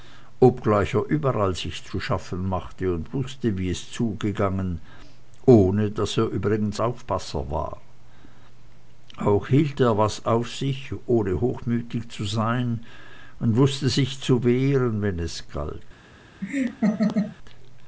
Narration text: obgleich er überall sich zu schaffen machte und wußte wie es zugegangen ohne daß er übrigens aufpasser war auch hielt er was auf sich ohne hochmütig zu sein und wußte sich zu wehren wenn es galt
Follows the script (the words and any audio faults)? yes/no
no